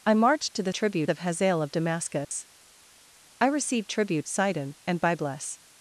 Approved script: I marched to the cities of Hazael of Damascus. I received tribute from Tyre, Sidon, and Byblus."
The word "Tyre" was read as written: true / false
false